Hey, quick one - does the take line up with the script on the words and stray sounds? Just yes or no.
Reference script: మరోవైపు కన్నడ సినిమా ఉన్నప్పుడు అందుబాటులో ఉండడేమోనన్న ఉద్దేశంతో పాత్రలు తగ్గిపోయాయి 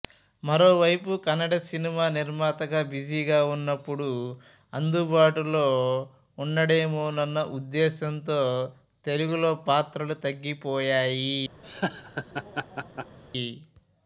no